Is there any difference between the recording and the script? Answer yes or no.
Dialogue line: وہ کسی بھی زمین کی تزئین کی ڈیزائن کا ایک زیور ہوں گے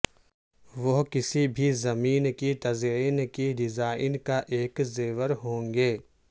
no